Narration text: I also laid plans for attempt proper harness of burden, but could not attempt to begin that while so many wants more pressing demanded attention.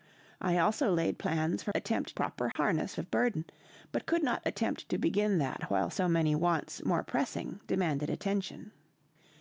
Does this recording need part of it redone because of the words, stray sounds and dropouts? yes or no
yes